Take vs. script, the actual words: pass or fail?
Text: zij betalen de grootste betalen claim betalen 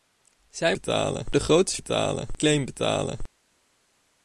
pass